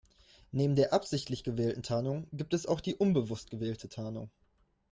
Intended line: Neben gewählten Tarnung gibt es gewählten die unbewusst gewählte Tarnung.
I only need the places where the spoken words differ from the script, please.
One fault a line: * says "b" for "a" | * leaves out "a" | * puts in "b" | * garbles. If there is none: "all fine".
* puts in "der absichtlich"
* says "auch" for "gewählten"